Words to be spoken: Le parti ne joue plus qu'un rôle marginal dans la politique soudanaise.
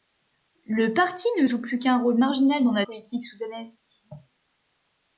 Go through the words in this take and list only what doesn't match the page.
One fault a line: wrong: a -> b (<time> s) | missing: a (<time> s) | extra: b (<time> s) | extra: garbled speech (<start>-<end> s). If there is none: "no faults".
no faults